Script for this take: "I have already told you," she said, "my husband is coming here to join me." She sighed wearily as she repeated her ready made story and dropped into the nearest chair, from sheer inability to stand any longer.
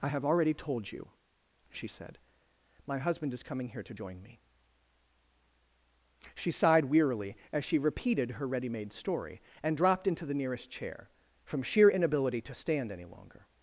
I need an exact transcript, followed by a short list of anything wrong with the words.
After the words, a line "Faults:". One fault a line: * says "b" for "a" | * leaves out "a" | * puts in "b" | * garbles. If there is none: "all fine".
"I have already told you," she said, "my husband is coming here to join me." She sighed wearily as she repeated her ready made story and dropped into the nearest chair, from sheer inability to stand any longer.
Faults:
all fine